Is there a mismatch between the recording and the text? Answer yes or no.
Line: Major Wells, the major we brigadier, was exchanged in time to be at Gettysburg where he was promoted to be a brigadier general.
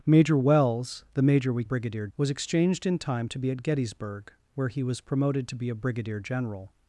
no